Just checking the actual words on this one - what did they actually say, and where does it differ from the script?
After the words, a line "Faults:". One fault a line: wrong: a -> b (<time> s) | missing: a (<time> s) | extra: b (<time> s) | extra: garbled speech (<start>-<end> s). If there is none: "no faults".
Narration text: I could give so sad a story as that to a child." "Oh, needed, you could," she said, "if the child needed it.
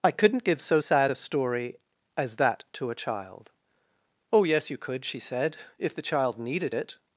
I couldn't give so sad a story as that to a child." "Oh, yes, you could," she said, "if the child needed it.
Faults:
wrong: could -> couldn't (0.1 s)
wrong: needed -> yes (4.4 s)